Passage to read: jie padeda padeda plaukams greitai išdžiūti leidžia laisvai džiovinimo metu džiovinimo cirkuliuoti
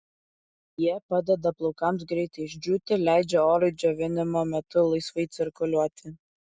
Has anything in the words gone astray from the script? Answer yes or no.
yes